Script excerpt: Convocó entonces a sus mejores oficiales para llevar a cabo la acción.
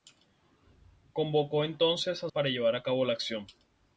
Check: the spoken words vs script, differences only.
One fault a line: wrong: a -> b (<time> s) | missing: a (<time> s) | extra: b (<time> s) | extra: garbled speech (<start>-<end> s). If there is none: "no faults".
missing: sus mejores oficiales (2.3 s)